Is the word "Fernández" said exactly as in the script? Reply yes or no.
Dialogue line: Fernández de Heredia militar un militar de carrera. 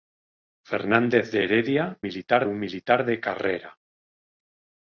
yes